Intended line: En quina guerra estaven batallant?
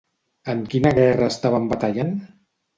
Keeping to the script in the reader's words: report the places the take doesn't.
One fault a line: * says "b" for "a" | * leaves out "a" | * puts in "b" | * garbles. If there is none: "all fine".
all fine